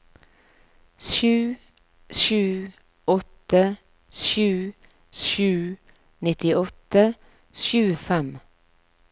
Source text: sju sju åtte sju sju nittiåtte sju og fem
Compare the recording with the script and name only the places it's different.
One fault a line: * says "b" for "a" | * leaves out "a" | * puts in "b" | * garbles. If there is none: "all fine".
all fine